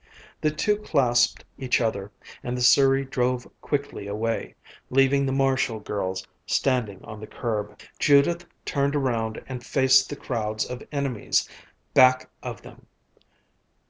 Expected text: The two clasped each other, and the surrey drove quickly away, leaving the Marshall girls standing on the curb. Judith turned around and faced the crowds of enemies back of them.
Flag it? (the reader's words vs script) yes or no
no